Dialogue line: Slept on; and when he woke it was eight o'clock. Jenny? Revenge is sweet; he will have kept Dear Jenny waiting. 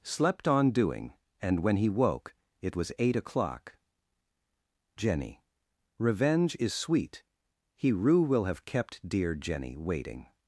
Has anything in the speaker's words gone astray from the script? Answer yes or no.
yes